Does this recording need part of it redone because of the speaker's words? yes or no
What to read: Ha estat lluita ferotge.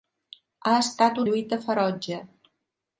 no